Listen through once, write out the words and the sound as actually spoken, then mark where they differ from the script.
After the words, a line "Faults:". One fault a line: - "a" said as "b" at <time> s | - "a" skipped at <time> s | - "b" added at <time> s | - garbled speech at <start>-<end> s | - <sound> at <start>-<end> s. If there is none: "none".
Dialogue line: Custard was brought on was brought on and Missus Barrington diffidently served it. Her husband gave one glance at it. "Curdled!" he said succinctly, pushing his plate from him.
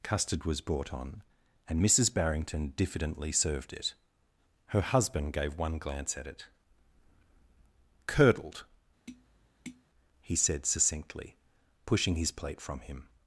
Custard was brought on and Missus Barrington diffidently served it. Her husband gave one glance at it. "Curdled!" he said succinctly, pushing his plate from him.
Faults:
- "was brought on" skipped at 1.2 s
- tap at 9.1-9.8 s